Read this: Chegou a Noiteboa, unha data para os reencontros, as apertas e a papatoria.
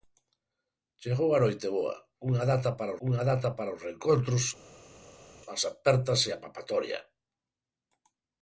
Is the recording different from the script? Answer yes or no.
yes